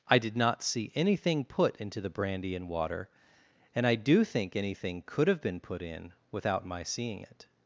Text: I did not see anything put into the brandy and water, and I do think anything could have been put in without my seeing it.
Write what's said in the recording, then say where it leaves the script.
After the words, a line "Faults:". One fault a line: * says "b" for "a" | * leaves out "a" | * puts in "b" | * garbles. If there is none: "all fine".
I did not see anything put into the brandy and water, and I do think anything could have been put in without my seeing it.
Faults:
all fine